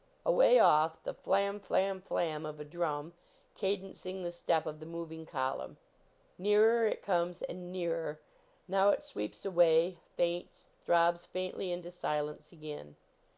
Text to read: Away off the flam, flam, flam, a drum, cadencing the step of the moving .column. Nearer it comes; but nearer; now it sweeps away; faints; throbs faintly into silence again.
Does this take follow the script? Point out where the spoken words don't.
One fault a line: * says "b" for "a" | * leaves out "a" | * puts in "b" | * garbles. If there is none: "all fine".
* puts in "of"
* says "and" for "but"